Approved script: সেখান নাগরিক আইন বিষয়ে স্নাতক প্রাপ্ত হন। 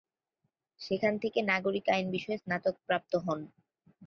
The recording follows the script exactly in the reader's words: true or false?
false